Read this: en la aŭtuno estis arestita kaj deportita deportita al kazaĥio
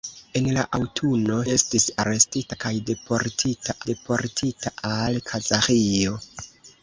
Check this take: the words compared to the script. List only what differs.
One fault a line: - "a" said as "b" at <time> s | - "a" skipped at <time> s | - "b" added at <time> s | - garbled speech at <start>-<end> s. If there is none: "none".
none